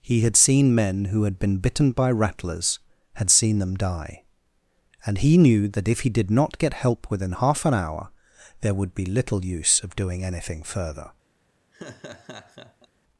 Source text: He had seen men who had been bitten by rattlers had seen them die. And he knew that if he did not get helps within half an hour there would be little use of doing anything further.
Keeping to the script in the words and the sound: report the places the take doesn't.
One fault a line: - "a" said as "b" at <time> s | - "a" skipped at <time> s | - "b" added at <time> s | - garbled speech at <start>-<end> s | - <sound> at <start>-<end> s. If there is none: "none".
- "helps" said as "help" at 6.7 s
- laugh at 11.7-12.9 s